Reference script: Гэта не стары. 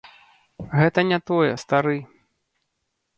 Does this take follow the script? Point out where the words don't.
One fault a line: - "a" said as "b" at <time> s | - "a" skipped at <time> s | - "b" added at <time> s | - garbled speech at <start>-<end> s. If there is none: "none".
- "тое" added at 1.3 s